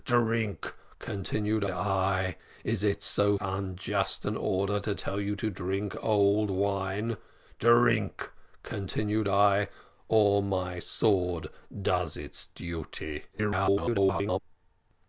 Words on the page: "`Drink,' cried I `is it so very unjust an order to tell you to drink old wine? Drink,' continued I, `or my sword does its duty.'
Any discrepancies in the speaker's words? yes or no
yes